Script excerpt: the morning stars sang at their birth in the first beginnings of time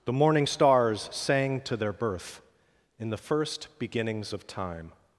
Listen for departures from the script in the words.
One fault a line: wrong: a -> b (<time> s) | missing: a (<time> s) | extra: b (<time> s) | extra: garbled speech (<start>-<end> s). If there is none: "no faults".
wrong: at -> to (1.6 s)